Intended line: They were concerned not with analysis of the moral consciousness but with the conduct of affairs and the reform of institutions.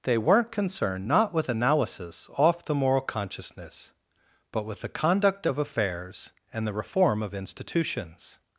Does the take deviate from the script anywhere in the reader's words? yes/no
yes